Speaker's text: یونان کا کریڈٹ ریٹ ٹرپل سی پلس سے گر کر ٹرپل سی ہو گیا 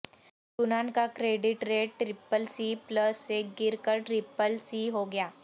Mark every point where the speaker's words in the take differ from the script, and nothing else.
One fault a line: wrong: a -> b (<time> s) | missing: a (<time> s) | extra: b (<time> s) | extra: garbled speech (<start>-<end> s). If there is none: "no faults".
no faults